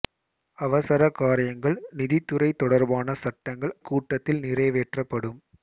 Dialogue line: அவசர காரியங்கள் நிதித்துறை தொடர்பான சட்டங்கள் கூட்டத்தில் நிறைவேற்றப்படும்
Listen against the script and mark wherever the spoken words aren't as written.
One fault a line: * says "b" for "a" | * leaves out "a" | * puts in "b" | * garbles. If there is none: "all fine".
all fine